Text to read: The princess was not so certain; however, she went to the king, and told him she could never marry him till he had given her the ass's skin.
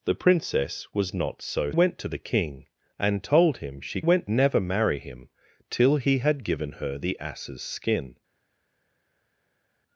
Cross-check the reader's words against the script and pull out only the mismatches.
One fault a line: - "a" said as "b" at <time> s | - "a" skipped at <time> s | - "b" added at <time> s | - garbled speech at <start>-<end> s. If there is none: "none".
- "certain however she" skipped at 1.7 s
- "could" said as "went" at 4.0 s